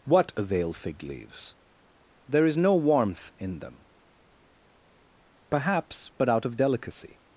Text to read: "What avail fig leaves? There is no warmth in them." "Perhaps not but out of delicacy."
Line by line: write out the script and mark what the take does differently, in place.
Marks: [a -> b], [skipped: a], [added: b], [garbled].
"What avail fig leaves? There is no warmth in them." "Perhaps [skipped: not] but out of delicacy."